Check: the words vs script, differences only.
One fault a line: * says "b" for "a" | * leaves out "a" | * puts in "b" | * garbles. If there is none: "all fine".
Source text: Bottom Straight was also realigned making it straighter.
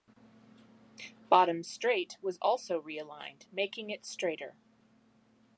all fine